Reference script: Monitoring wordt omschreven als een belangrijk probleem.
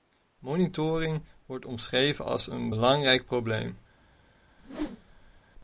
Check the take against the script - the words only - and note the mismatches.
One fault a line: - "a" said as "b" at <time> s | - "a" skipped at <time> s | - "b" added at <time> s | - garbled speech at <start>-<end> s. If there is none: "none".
none